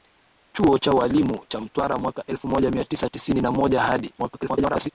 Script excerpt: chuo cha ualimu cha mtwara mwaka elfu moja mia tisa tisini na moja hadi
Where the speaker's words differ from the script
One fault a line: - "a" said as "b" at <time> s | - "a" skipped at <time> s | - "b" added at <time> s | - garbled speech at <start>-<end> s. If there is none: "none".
- garbled speech at 4.2-4.9 s